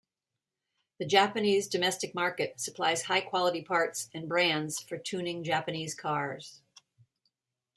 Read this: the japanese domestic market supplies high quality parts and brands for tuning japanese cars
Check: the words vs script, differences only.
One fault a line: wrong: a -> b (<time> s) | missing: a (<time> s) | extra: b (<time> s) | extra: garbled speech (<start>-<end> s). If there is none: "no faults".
no faults